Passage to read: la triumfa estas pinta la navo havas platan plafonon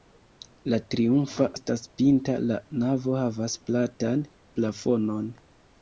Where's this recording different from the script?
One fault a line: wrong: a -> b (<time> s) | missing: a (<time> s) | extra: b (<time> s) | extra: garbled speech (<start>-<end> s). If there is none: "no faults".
no faults